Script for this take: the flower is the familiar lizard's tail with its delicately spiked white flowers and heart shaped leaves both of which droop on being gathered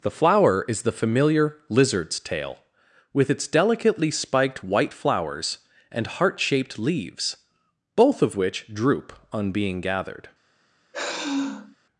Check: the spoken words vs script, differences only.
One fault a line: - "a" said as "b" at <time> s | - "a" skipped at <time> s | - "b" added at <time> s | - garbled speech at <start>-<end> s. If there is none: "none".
none